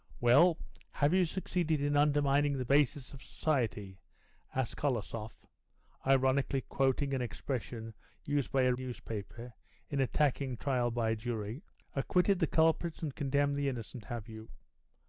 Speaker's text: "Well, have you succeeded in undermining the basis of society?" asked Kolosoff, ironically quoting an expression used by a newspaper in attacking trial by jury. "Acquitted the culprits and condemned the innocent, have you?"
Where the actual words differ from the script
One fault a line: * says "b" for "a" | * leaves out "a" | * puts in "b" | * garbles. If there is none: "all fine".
all fine